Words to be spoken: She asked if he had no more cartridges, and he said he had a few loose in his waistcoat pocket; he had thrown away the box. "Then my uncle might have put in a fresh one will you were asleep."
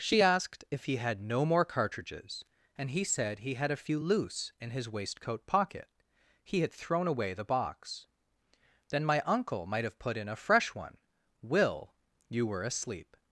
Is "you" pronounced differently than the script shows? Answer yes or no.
no